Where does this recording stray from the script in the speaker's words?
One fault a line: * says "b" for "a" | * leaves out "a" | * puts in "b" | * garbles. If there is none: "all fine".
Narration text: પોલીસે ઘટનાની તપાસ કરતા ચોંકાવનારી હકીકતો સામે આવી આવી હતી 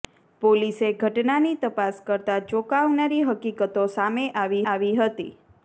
all fine